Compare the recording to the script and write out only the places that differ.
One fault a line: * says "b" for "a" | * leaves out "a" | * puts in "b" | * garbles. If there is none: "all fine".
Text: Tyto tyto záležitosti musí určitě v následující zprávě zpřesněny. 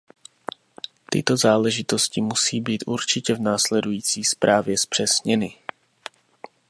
* leaves out "tyto"
* puts in "být"